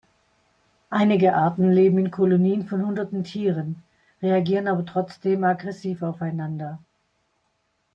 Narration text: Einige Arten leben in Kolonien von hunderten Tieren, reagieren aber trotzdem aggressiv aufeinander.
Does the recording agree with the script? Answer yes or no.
yes